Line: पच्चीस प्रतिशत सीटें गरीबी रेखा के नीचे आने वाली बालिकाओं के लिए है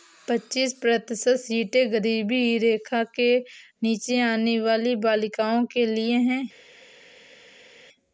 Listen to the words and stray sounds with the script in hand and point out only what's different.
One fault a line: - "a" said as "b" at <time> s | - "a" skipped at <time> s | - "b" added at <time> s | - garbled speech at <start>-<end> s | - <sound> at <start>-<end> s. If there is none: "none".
none